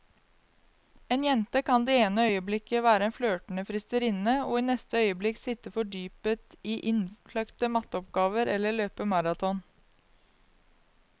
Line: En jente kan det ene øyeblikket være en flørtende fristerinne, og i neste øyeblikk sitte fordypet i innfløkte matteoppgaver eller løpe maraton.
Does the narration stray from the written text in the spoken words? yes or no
no